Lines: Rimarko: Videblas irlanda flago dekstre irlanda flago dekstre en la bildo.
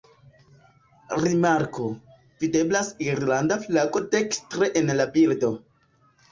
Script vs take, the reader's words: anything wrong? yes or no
yes